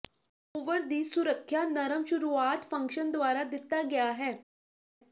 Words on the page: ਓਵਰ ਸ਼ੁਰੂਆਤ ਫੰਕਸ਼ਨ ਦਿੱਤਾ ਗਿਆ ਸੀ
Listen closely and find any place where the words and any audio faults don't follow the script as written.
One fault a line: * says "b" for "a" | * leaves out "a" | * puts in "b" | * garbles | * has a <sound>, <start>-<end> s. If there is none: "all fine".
* puts in "ਦੀ ਸੁਰੱਖਿਆ ਨਰਮ"
* puts in "ਦੁਆਰਾ"
* says "ਹੈ" for "ਸੀ"